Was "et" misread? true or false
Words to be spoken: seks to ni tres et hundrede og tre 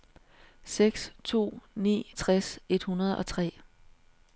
false